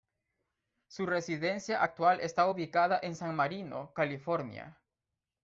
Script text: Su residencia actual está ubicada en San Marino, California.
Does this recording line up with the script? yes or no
yes